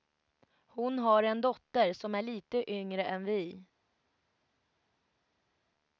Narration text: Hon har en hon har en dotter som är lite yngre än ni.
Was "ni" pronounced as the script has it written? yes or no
no